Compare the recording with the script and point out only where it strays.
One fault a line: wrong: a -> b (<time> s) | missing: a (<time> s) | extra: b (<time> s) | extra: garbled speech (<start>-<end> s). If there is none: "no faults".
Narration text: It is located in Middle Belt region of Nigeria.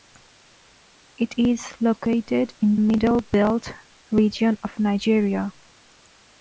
no faults